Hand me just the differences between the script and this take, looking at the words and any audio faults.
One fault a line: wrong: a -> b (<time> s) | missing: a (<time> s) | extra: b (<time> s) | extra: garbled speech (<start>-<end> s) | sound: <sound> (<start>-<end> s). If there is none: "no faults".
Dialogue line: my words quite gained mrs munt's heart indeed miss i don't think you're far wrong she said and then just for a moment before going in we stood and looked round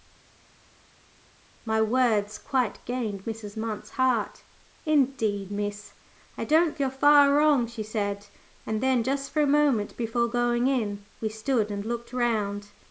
missing: think (6.8 s)